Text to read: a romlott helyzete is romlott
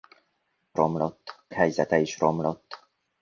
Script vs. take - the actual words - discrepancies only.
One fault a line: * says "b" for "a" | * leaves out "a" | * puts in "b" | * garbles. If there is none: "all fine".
all fine